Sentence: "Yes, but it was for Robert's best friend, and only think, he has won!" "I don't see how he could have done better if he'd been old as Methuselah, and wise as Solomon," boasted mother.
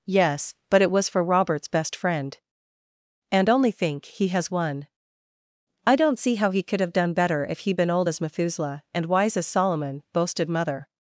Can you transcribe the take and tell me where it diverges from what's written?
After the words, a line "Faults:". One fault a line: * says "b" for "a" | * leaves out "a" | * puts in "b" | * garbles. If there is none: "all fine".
"Yes, but it was for Robert's best friend, and only think, he has won!" "I don't see how he could have done better if he'd been old as Methuselah, and wise as Solomon," boasted mother.
Faults:
all fine